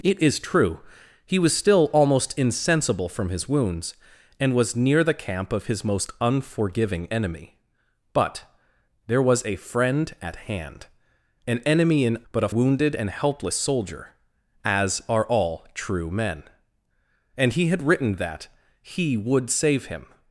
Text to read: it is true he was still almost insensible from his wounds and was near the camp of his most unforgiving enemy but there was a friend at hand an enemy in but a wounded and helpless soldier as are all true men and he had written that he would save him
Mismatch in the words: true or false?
false